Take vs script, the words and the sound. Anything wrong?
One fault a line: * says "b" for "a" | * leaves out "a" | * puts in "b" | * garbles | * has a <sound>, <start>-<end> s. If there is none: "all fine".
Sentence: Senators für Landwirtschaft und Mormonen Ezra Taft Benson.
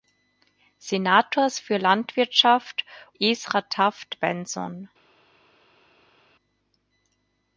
* leaves out "und Mormonen"